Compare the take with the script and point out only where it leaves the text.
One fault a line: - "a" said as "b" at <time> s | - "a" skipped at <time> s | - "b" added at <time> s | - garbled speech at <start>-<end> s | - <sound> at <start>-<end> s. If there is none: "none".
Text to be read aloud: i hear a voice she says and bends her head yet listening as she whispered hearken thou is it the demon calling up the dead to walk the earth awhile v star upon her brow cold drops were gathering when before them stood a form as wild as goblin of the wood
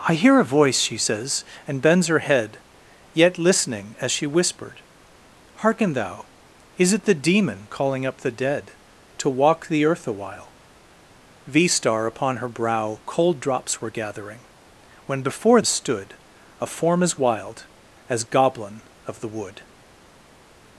- "them" skipped at 15.6 s